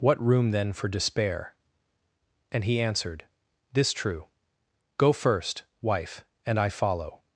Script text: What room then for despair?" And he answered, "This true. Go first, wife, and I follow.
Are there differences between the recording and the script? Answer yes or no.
no